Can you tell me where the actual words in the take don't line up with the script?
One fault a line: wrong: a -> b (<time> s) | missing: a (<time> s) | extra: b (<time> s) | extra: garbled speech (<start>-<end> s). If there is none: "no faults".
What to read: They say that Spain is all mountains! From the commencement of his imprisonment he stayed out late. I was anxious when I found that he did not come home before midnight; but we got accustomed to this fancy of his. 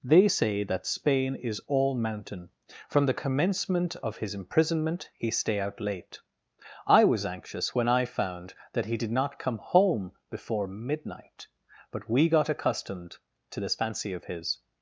wrong: mountains -> mountain (1.9 s)
wrong: stayed -> stay (5.3 s)